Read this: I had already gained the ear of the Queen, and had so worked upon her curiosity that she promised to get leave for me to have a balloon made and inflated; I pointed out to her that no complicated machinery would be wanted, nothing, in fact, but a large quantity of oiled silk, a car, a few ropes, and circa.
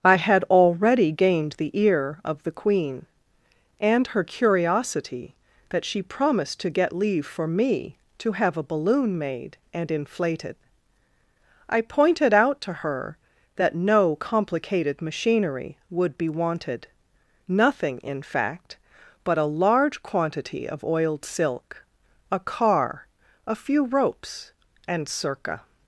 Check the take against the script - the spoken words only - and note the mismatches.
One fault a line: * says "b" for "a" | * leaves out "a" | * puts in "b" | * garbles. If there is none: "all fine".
* leaves out "had so worked upon"